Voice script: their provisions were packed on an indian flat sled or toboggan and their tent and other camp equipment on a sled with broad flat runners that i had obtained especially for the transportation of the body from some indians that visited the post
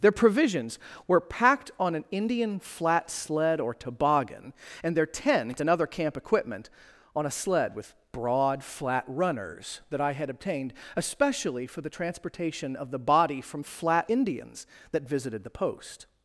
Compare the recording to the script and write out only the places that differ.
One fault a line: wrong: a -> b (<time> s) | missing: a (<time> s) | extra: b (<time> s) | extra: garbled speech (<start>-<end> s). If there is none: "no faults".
wrong: some -> flat (13.6 s)